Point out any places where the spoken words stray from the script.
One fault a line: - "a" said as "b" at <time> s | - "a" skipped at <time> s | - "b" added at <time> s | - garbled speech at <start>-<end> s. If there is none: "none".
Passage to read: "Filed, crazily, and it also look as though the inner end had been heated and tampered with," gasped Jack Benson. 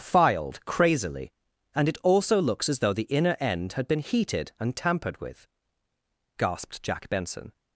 - "look" said as "looks" at 2.4 s